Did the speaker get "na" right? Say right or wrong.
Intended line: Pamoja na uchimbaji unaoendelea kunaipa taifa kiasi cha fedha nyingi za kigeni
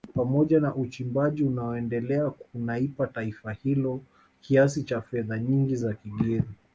right